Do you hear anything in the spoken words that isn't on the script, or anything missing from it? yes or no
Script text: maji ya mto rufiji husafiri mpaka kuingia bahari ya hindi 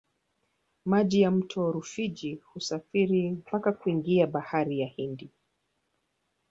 no